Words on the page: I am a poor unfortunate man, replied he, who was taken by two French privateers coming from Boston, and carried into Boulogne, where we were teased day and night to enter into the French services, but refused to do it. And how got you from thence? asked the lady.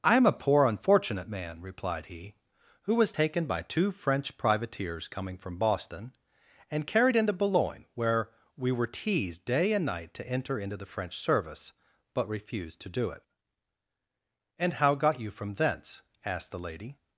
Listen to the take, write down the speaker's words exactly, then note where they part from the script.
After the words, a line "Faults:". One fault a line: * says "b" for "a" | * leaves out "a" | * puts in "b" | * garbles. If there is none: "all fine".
I am a poor unfortunate man, replied he, who was taken by two French privateers coming from Boston, and carried into Boulogne, where we were teased day and night to enter into the French service, but refused to do it. And how got you from thence? asked the lady.
Faults:
* says "service" for "services"